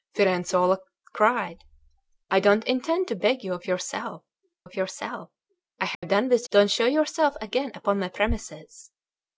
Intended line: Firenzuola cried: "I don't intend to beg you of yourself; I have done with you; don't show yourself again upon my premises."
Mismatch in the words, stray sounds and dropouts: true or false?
true